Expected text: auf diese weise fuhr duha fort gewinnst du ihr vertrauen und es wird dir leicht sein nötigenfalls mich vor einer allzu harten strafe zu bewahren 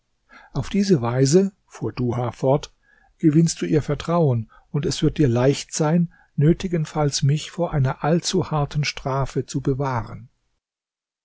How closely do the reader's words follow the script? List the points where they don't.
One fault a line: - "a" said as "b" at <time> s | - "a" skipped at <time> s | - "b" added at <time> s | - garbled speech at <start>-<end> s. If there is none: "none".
none